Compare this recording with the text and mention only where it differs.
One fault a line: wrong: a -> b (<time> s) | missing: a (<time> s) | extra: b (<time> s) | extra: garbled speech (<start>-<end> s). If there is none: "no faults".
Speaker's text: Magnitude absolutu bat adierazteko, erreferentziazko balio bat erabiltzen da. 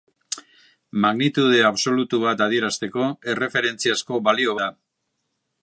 missing: bat erabiltzen (4.6 s)